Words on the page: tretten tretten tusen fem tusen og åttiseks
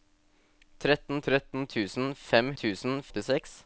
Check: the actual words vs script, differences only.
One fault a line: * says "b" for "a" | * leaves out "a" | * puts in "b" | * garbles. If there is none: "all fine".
all fine